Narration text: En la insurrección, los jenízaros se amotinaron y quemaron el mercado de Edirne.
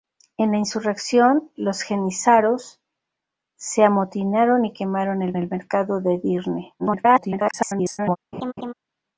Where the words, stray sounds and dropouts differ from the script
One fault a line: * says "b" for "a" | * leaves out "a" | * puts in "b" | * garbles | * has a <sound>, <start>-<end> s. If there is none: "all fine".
* puts in "el"
* garbles
* has a laugh, 8.3-8.7 s